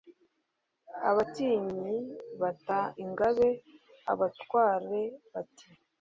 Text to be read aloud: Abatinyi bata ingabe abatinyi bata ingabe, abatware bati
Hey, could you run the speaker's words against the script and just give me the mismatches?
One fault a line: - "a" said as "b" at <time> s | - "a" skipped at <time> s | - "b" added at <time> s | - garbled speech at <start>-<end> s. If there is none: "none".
- "abatinyi bata ingabe" skipped at 3.5 s